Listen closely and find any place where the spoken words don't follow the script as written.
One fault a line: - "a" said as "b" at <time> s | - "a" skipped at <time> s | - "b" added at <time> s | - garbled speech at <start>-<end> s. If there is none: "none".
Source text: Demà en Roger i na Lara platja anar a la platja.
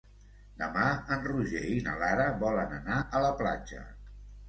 - "platja" said as "volen" at 2.5 s